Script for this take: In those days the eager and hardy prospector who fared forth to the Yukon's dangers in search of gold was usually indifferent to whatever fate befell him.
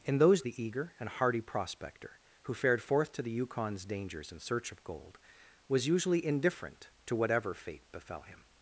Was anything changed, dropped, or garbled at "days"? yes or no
yes